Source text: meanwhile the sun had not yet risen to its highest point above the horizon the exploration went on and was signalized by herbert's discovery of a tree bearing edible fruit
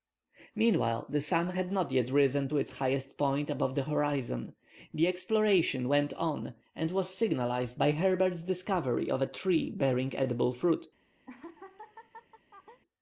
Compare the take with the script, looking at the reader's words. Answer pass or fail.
pass